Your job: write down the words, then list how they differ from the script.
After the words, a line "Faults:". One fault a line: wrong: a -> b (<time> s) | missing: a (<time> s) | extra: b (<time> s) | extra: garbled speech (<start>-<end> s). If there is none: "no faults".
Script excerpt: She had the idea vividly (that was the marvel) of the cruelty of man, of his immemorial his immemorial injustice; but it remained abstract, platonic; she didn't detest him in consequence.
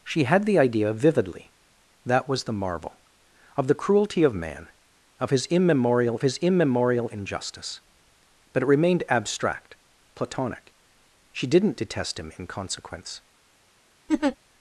She had the idea vividly (that was the marvel) of the cruelty of man, of his immemorial his immemorial injustice; but it remained abstract, platonic; she didn't detest him in consequence.
Faults:
no faults